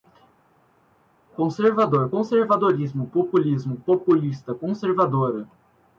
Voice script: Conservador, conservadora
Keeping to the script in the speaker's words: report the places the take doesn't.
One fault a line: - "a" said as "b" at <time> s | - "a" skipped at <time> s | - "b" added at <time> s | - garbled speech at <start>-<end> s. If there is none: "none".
- "conservadorismo populismo populista" added at 2.1 s